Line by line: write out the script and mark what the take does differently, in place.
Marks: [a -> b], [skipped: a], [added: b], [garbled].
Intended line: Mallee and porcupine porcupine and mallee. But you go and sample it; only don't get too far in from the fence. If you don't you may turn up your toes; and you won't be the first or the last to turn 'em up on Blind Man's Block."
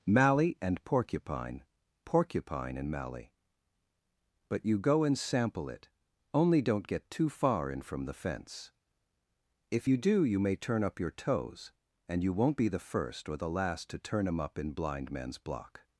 Mallee and porcupine porcupine and mallee. But you go and sample it; only don't get too far in from the fence. If you [don't -> do] you may turn up your toes; and you won't be the first or the last to turn 'em up [on -> in] Blind Man's Block."